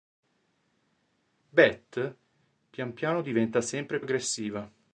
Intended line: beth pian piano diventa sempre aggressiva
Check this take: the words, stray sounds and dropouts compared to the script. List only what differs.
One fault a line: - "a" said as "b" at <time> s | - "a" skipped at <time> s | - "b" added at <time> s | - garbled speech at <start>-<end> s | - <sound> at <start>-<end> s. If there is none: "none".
none